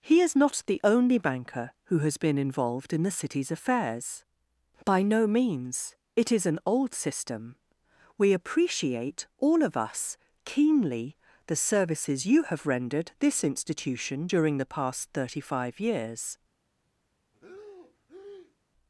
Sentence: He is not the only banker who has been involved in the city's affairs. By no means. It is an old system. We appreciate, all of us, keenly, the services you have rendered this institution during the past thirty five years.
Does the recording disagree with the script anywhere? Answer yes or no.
no